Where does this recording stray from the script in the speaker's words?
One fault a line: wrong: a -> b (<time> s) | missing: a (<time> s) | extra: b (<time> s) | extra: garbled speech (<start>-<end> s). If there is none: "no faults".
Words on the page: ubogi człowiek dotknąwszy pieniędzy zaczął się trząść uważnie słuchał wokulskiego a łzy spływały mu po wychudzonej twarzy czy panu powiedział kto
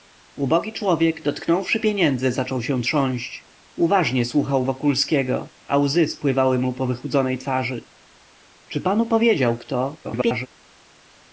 extra: garbled speech (10.0-10.5 s)